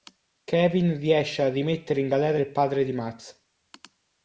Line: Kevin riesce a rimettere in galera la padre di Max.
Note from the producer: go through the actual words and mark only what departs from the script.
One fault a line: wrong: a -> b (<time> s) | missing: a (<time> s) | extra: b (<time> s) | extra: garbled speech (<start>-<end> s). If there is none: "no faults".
wrong: la -> il (2.4 s)